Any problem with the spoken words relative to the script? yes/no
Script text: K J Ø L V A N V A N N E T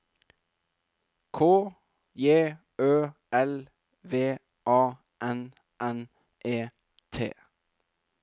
yes